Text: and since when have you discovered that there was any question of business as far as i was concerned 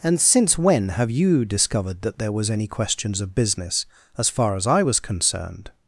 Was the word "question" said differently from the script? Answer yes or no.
yes